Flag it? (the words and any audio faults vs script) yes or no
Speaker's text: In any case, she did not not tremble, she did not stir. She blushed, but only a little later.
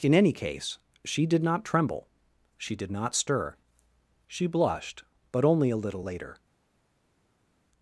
yes